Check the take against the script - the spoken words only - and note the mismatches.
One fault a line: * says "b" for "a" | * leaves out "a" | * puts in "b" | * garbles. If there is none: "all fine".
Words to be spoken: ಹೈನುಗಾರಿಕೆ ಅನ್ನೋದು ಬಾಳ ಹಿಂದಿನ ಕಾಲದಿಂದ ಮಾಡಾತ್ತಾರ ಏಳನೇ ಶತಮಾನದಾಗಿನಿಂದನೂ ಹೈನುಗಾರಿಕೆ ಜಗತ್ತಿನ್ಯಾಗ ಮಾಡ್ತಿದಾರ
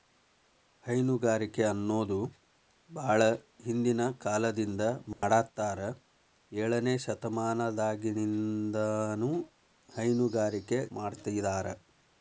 * leaves out "ಜಗತ್ತಿನ್ಯಾಗ"